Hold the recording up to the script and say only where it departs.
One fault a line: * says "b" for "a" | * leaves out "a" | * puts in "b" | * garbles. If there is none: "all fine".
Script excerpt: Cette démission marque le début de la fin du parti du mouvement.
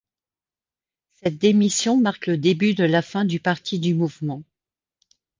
all fine